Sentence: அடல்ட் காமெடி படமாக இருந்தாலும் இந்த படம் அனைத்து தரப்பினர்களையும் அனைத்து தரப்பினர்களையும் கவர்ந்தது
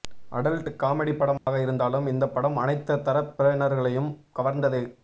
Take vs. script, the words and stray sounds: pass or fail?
fail